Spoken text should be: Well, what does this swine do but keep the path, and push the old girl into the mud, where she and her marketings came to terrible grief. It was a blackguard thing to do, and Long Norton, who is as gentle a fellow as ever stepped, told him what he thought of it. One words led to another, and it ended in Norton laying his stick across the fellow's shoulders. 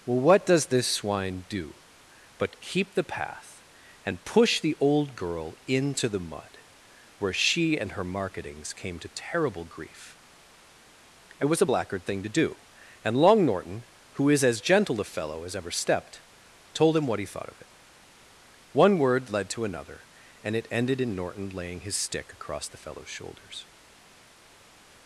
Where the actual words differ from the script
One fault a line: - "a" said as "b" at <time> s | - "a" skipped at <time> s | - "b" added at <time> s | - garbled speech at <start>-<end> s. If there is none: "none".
- "words" said as "word" at 19.0 s